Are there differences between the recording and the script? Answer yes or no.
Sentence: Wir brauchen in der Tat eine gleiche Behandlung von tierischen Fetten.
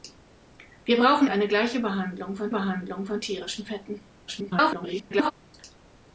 yes